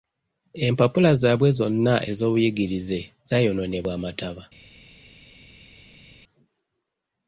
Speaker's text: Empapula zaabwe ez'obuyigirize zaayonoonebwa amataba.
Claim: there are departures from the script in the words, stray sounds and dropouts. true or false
true